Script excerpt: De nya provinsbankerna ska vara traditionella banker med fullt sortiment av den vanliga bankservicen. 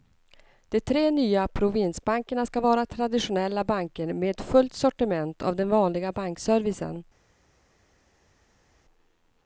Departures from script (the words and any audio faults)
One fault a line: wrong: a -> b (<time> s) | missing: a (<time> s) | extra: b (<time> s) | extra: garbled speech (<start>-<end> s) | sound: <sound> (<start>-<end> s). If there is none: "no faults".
extra: tre (0.8 s)